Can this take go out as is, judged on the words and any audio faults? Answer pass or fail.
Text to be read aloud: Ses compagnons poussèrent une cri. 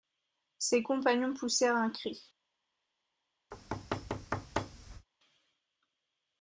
fail